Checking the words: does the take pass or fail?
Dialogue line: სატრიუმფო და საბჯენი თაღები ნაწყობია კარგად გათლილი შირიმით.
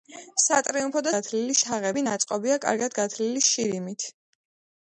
fail